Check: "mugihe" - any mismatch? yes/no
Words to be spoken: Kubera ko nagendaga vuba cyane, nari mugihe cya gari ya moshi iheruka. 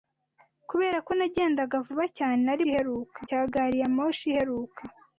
yes